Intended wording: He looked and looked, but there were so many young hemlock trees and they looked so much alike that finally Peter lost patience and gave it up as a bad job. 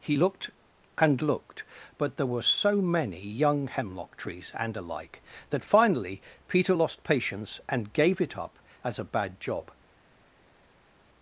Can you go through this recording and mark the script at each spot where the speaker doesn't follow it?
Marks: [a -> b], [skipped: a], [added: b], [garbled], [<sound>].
He looked and looked, but there were so many young hemlock trees and [skipped: they looked so much] alike that finally Peter lost patience and gave it up as a bad job.